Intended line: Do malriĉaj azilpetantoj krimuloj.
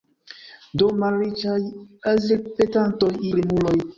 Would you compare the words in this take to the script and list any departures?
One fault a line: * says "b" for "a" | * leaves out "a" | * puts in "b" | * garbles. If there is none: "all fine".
all fine